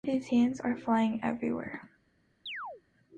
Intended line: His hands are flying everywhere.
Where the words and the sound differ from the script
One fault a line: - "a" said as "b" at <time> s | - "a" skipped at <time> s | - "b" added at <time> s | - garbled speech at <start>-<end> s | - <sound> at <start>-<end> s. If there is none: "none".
- chirp at 2.5-2.8 s